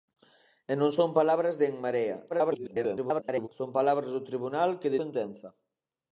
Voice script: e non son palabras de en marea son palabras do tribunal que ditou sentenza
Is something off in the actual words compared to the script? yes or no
yes